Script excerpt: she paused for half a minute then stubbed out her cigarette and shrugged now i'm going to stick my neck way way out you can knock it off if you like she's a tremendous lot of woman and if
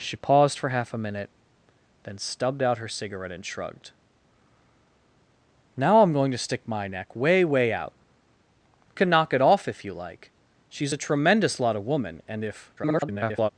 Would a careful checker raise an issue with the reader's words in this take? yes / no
yes